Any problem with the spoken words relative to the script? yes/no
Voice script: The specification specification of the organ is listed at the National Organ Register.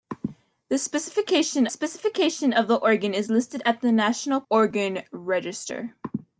no